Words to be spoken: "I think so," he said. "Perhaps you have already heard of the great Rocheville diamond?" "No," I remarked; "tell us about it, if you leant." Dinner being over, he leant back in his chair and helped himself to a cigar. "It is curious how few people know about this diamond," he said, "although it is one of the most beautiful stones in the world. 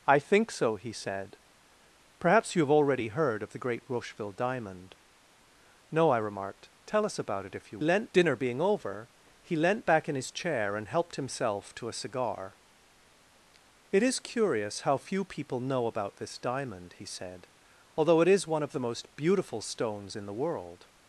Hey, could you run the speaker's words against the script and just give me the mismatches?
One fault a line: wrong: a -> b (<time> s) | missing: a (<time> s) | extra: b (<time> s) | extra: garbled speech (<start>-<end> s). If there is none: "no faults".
no faults